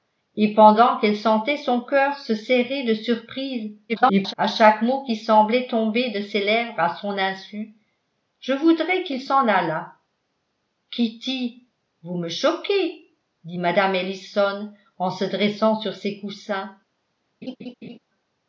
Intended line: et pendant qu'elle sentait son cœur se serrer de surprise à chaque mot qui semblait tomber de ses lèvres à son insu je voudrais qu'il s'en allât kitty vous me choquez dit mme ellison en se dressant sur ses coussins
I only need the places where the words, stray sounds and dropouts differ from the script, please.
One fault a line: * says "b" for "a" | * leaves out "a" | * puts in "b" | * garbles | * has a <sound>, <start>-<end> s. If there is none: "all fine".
* garbles
* has a laugh, 17.4-18.0 s